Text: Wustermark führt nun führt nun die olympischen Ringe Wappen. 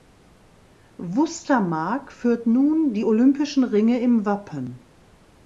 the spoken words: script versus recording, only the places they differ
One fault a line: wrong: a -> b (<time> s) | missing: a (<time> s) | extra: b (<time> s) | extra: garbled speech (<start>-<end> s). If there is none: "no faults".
missing: führt nun (2.9 s)
extra: im (4.0 s)